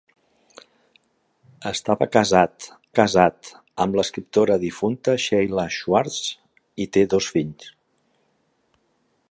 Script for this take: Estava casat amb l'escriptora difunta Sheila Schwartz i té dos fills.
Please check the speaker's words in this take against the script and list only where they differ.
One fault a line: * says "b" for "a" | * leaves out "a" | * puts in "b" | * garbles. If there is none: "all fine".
* puts in "casat"